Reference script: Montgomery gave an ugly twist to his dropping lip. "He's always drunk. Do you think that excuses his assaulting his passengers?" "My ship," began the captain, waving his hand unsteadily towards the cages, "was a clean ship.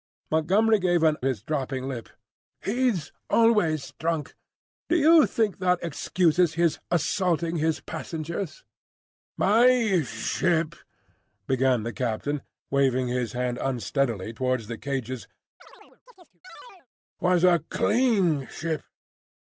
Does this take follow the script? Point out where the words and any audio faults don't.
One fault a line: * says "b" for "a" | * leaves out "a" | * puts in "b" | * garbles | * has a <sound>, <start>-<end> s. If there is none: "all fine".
* leaves out "ugly twist to"
* has a chirp, 15.6-16.9 s